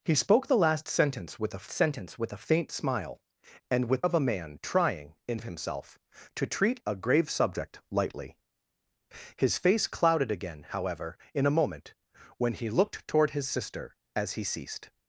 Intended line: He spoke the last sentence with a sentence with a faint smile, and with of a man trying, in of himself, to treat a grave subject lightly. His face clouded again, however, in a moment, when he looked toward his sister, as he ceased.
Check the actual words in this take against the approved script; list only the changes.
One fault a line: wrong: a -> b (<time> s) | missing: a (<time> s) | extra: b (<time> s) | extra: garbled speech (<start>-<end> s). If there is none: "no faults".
no faults